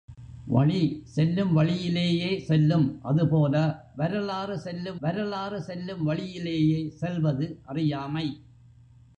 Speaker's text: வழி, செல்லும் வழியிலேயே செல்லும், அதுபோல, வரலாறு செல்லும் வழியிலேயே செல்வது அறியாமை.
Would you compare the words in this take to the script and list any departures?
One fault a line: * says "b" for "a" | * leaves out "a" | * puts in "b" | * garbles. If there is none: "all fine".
* puts in "வரலாறு செல்லும்"